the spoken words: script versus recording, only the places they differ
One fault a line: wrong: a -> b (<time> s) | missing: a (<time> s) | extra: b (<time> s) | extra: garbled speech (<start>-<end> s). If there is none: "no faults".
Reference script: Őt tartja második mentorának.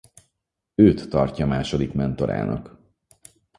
no faults